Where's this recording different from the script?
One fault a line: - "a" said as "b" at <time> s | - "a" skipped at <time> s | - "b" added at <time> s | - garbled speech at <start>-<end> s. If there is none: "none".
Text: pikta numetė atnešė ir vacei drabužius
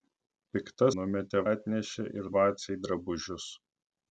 none